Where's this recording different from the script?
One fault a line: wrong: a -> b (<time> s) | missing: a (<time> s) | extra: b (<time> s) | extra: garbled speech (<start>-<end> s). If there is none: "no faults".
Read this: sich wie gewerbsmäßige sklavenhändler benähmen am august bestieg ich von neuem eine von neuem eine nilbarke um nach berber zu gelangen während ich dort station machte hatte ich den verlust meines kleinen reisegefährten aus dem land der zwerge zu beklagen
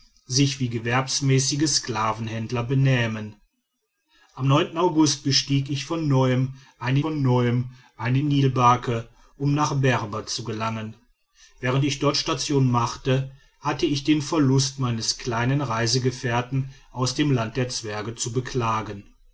no faults